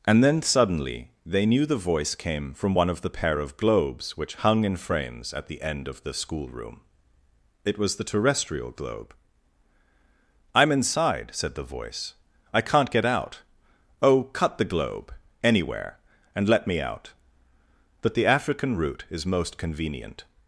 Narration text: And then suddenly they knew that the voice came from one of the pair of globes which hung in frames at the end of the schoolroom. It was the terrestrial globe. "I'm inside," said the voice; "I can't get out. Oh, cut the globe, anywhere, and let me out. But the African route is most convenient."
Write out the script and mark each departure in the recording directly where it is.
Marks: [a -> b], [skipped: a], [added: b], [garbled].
And then suddenly they knew [skipped: that] the voice came from one of the pair of globes which hung in frames at the end of the schoolroom. It was the terrestrial globe. "I'm inside," said the voice; "I can't get out. Oh, cut the globe, anywhere, and let me out. But the African route is most convenient."